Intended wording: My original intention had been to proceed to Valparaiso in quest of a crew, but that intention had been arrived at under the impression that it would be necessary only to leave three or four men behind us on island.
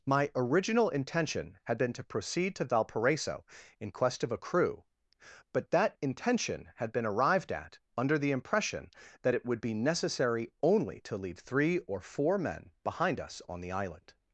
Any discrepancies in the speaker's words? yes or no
yes